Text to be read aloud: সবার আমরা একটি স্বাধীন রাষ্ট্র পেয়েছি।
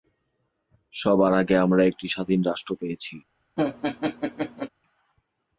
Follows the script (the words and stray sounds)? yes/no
no